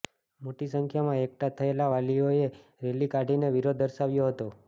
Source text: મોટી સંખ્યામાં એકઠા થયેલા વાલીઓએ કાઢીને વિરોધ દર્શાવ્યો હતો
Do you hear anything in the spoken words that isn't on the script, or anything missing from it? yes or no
yes